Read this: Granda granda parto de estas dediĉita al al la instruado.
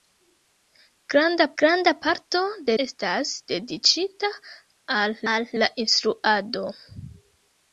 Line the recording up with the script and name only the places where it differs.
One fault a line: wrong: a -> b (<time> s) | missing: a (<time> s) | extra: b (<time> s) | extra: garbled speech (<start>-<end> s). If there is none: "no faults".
no faults